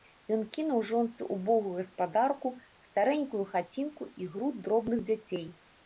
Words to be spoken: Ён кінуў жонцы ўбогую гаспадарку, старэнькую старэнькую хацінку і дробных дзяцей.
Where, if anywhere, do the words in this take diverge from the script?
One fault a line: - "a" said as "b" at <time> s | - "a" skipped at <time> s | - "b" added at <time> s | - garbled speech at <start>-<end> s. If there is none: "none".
- "старэнькую" skipped at 3.4 s
- "груд" added at 4.3 s